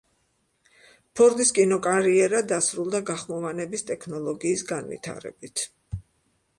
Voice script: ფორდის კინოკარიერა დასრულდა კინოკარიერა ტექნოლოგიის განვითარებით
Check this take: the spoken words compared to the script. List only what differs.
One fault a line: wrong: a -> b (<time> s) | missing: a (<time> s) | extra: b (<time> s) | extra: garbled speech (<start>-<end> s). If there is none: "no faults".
wrong: კინოკარიერა -> გახმოვანების (3.1 s)